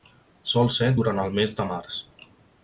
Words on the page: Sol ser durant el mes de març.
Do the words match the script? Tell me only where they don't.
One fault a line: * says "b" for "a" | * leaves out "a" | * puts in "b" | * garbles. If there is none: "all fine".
all fine